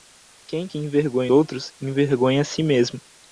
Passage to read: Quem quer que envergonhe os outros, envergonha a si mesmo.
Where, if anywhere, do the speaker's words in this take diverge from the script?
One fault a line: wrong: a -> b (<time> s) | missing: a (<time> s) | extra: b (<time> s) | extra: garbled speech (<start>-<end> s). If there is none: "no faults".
missing: quer (0.7 s)
missing: os (1.3 s)